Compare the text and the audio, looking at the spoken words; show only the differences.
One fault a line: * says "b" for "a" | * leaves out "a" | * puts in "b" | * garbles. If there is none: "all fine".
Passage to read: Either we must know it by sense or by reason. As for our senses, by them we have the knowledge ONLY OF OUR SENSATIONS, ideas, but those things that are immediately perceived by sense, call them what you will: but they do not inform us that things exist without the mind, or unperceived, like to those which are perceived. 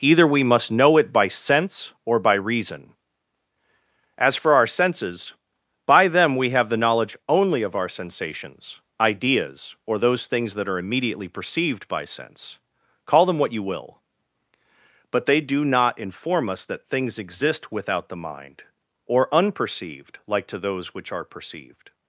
* says "or" for "but"